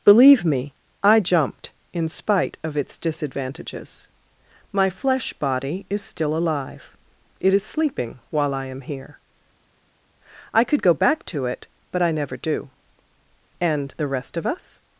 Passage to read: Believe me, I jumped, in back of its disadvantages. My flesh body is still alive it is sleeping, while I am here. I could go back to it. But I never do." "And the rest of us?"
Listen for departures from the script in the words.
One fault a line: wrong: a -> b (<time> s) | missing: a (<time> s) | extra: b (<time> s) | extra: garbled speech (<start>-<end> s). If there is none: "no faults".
wrong: back -> spite (2.1 s)